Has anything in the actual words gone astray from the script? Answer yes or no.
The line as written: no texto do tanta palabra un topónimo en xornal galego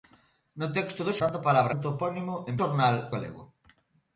no